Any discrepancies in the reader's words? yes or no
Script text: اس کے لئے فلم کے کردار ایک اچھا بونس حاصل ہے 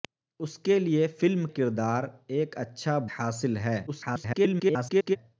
yes